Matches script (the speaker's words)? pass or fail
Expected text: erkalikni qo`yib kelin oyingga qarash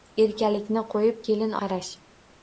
fail